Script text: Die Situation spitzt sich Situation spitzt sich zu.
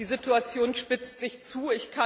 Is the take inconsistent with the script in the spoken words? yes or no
yes